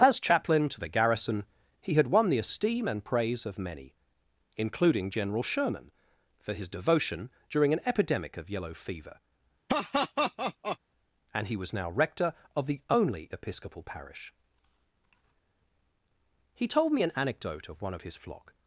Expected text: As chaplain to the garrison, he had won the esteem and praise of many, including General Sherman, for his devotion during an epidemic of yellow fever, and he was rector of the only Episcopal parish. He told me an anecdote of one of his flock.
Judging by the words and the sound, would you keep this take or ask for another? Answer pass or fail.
fail